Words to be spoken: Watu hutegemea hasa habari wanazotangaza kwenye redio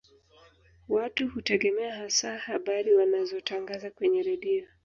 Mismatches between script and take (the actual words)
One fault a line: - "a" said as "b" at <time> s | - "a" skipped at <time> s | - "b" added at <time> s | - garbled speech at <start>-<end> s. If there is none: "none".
none